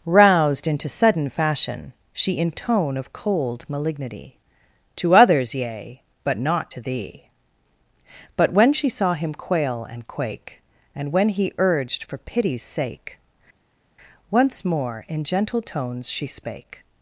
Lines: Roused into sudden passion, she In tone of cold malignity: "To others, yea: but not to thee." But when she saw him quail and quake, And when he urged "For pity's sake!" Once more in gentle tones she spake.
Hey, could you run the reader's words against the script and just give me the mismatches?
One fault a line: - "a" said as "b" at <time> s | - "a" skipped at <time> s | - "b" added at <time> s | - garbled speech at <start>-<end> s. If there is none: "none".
- "passion" said as "fashion" at 1.3 s